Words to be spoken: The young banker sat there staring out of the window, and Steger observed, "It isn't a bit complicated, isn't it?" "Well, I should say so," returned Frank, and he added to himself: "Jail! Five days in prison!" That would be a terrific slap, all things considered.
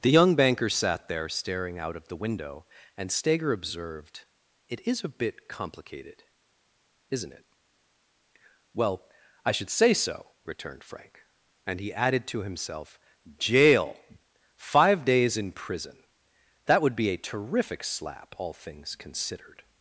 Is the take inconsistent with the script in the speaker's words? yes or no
yes